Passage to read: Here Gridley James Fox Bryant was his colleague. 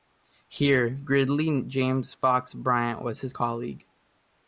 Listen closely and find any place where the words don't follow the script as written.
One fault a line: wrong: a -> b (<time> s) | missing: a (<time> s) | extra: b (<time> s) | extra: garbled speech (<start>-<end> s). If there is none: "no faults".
no faults